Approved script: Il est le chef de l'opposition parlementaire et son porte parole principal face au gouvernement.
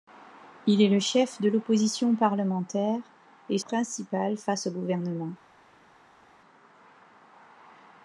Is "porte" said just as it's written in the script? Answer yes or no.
no